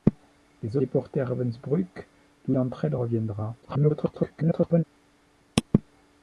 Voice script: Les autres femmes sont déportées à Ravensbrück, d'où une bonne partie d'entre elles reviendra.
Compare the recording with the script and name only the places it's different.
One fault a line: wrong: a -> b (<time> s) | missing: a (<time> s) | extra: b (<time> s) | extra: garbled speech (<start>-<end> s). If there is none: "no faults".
missing: autres femmes sont (0.8 s)
missing: une bonne partie (2.5 s)
extra: garbled speech (3.6-4.8 s)